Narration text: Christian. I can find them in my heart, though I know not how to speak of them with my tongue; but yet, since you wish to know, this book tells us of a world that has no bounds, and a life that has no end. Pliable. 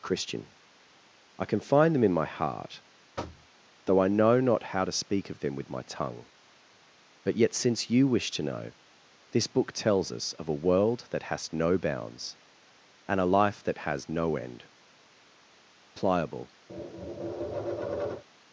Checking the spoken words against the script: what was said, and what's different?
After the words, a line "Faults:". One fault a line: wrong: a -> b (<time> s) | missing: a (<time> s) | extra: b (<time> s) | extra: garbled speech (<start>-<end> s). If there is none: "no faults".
Christian. I can find them in my heart, though I know not how to speak of them with my tongue; but yet, since you wish to know, this book tells us of a world that has no bounds, and a life that has no end. Pliable.
Faults:
no faults